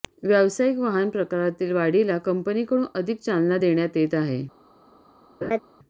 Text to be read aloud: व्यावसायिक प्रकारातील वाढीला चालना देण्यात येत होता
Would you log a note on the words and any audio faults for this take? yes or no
yes